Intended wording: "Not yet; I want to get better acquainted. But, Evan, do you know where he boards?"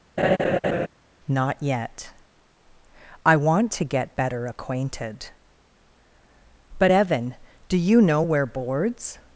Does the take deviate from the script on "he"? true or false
true